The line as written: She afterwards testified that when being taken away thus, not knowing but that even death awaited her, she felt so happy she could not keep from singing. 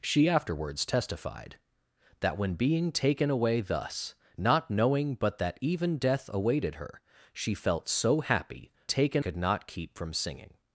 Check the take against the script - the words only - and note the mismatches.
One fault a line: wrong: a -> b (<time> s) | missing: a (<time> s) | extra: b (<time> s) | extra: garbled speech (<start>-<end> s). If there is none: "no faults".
wrong: she -> taken (8.9 s)